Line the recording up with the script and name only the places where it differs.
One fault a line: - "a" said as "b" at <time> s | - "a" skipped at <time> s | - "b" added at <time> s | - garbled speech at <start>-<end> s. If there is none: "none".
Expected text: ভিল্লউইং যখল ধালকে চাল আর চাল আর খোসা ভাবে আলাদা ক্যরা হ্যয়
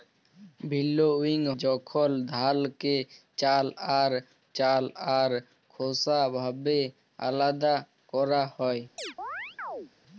none